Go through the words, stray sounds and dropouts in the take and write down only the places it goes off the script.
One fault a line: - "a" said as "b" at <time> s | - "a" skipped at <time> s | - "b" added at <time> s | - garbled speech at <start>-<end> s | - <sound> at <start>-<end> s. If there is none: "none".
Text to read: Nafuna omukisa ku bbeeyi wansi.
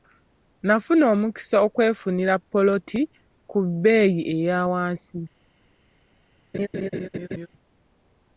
- "okwefunira ppoloti" added at 1.7 s
- "eya" added at 4.3 s
- laugh at 6.5-7.5 s